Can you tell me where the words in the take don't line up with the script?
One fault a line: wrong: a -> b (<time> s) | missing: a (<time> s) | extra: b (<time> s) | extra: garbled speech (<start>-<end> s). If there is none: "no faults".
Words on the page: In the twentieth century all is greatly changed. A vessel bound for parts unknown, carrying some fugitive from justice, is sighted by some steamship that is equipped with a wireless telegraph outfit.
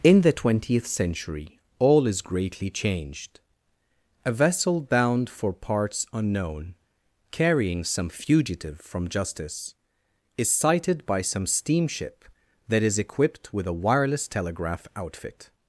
no faults